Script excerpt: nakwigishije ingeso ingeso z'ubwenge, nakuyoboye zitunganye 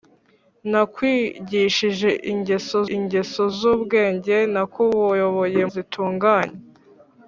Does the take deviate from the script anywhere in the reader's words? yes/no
no